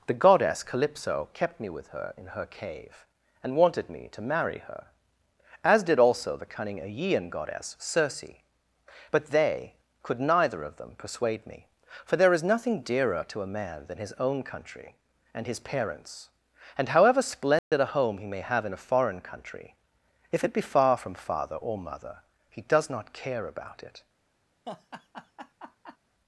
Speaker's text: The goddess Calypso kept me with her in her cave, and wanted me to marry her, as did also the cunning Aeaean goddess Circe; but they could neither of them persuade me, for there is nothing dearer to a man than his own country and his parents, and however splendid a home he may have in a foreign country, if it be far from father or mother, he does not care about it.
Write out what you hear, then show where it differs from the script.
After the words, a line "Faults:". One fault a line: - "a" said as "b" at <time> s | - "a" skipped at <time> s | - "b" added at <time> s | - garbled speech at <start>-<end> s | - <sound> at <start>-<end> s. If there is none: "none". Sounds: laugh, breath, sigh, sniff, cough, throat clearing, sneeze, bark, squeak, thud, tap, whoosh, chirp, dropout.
The goddess Calypso kept me with her in her cave, and wanted me to marry her, as did also the cunning Aeaean goddess Circe; but they could neither of them persuade me, for there is nothing dearer to a man than his own country and his parents, and however splendid a home he may have in a foreign country, if it be far from father or mother, he does not care about it.
Faults:
- dropout at 17.6-17.7 s
- laugh at 24.7-26.0 s